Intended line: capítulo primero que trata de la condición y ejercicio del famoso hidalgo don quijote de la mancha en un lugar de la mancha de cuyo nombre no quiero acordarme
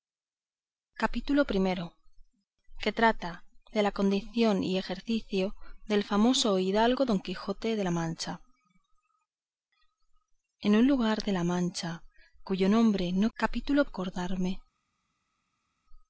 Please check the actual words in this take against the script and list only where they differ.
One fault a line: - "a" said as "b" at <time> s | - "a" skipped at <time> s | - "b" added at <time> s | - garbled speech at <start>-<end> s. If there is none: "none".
- "de" skipped at 12.0 s
- "quiero" said as "capítulo" at 13.3 s